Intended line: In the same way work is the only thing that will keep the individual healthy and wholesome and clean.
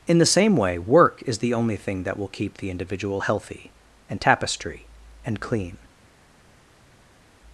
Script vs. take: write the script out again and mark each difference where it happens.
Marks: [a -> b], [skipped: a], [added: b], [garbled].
In the same way work is the only thing that will keep the individual healthy and [wholesome -> tapestry] and clean.